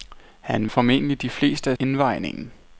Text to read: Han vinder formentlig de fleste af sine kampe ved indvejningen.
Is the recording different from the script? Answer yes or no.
yes